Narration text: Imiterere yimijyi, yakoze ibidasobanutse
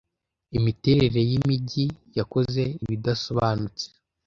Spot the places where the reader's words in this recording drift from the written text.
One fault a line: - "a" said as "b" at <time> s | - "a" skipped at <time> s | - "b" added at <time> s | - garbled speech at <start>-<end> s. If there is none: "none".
none